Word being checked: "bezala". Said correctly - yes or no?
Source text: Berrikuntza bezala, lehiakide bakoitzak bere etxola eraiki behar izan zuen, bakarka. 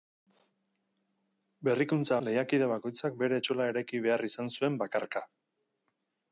no